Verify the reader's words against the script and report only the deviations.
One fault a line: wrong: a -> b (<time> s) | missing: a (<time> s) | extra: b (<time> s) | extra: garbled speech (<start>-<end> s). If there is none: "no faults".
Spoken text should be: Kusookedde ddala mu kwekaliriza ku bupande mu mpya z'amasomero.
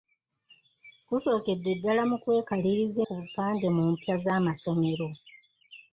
no faults